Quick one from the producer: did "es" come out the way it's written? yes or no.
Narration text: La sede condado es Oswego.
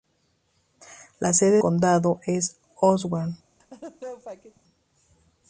yes